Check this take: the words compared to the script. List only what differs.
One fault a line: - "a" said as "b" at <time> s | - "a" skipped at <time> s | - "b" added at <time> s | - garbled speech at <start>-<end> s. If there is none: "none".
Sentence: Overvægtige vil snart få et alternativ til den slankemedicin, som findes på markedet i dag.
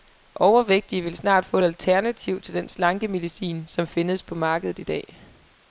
none